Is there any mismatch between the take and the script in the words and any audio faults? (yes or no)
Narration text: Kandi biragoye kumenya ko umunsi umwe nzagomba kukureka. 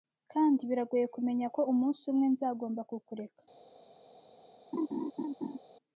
yes